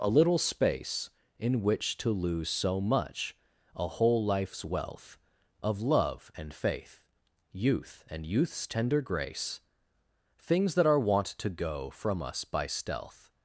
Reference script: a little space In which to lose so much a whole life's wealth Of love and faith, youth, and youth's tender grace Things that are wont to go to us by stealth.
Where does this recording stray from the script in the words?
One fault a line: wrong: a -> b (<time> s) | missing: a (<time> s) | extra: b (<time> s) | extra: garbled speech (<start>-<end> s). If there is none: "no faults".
wrong: to -> from (11.9 s)